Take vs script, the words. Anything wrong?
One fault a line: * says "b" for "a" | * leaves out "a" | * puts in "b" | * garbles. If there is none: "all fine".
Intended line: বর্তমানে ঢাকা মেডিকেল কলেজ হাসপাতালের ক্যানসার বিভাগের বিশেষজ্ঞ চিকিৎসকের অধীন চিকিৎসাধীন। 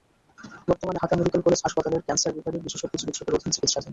all fine